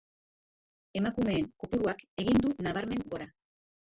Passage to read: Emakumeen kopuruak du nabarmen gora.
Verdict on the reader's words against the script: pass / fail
fail